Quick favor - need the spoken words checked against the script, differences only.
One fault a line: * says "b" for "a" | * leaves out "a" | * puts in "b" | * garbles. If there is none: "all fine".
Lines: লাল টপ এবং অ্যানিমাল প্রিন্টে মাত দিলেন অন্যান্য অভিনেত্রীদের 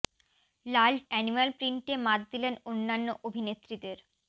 * leaves out "টপ এবং"